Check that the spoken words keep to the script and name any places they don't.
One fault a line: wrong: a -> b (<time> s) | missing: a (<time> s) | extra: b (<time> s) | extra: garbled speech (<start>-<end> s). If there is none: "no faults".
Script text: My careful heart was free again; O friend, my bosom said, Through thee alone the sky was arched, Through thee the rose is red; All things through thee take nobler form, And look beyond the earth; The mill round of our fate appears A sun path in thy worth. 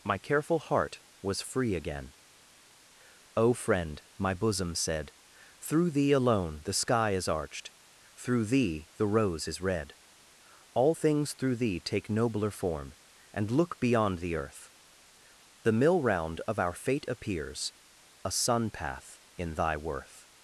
wrong: was -> is (7.1 s)